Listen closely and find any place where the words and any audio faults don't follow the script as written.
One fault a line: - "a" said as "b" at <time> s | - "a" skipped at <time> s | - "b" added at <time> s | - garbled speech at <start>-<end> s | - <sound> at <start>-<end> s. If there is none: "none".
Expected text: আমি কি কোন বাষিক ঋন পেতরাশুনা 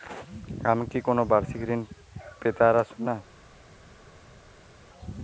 none